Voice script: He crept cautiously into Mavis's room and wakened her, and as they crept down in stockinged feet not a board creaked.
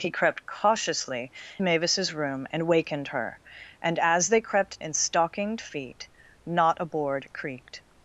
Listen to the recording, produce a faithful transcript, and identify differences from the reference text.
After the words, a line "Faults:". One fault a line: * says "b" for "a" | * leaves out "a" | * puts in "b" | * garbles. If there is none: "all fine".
He crept cautiously Mavis's room and wakened her, and as they crept in stockinged feet not a board creaked.
Faults:
* leaves out "into"
* leaves out "down"